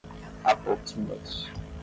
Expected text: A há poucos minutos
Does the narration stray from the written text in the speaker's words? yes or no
no